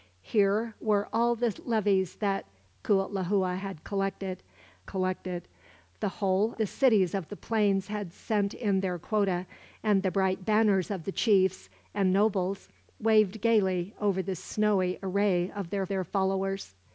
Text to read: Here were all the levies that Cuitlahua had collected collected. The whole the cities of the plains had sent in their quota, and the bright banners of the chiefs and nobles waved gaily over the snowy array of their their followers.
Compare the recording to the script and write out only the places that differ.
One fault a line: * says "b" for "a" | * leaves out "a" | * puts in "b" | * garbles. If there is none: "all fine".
all fine